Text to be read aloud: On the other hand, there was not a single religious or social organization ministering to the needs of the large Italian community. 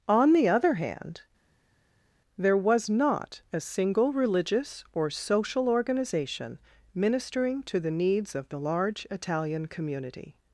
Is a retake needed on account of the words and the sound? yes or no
no